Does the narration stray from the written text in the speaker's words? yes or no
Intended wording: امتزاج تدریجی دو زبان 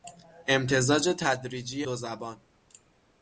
no